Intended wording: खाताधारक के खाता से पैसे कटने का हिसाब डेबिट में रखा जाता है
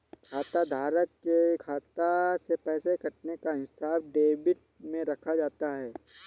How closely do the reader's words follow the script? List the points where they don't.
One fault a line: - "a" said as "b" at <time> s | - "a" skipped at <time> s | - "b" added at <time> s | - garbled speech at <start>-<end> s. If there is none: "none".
none